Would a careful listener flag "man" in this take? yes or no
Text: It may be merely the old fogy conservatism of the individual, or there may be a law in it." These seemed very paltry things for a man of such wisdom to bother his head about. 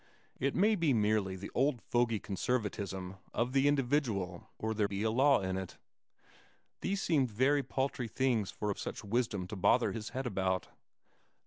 yes